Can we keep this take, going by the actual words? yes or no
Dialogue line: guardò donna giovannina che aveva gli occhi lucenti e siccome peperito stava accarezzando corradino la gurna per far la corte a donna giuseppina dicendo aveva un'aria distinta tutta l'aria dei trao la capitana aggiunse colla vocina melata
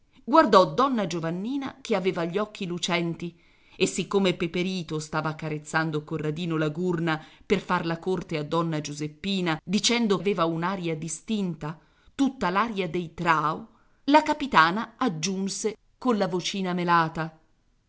yes